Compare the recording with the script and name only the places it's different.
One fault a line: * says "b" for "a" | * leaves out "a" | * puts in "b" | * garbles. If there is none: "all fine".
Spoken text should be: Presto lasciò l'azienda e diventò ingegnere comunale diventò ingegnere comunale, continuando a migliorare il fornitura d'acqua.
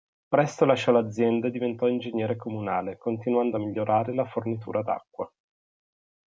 * leaves out "diventò ingegnere comunale"
* says "la" for "il"